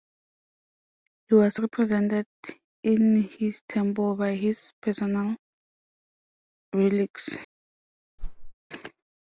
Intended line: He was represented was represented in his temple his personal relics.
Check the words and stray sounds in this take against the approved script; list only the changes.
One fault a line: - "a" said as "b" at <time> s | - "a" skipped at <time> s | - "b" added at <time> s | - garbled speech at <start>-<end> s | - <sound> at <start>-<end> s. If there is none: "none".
- "was represented" skipped at 2.2 s
- "by" added at 4.1 s
- whoosh at 8.2-8.5 s